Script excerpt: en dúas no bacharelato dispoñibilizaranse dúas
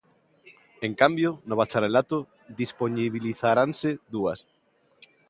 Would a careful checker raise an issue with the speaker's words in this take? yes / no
yes